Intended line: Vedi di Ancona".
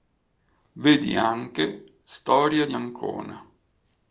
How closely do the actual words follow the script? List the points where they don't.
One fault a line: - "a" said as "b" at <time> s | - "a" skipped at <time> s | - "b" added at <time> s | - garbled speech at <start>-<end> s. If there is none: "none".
- "anche Storia" added at 1.1 s